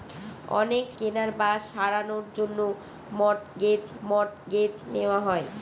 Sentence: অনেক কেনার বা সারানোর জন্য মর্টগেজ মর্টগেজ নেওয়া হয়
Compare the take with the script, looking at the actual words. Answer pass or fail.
pass